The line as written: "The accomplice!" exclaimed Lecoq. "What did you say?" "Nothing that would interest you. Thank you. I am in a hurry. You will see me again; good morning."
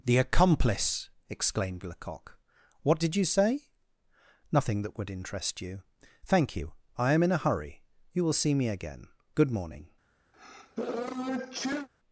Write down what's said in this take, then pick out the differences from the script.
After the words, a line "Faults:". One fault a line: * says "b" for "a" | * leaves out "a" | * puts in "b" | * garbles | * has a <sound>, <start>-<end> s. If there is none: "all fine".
"The accomplice!" exclaimed Lecoq. "What did you say?" "Nothing that would interest you. Thank you. I am in a hurry. You will see me again; good morning."
Faults:
* has a sneeze, 10.3-11.9 s